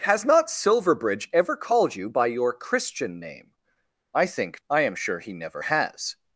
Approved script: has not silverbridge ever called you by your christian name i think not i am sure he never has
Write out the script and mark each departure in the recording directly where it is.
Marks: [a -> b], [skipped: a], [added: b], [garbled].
has not silverbridge ever called you by your christian name i think [skipped: not] i am sure he never has